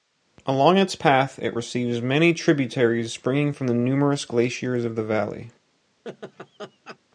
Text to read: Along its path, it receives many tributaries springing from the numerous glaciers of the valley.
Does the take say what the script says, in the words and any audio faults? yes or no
no